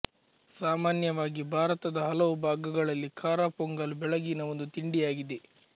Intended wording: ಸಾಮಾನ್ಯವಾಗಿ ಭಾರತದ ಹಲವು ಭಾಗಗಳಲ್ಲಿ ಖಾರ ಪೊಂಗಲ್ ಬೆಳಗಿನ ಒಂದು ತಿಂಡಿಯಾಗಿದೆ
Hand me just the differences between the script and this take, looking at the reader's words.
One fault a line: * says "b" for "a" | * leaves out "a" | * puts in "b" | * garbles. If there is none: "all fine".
all fine